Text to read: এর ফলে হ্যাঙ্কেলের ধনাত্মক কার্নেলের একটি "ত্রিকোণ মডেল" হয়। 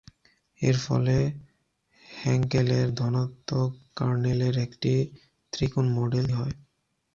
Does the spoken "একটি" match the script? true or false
true